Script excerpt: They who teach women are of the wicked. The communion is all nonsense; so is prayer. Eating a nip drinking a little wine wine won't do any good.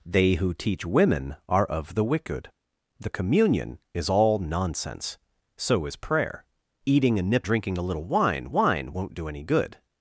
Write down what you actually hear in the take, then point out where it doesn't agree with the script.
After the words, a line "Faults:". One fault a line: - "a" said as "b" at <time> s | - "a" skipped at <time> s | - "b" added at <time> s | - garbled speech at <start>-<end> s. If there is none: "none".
They who teach women are of the wicked. The communion is all nonsense; so is prayer. Eating a nip drinking a little wine wine won't do any good.
Faults:
none